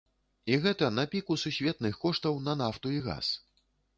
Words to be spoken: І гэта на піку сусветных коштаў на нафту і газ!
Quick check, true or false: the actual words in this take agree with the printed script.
true